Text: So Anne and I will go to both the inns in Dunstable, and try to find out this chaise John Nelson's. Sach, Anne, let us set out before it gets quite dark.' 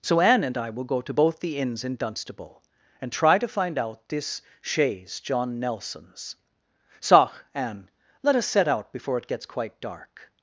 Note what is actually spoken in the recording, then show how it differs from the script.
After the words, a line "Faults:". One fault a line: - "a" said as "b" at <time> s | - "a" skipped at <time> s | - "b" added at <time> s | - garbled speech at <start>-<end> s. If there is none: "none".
So Anne and I will go to both the inns in Dunstable, and try to find out this chaise John Nelson's. Sach, Anne, let us set out before it gets quite dark.'
Faults:
none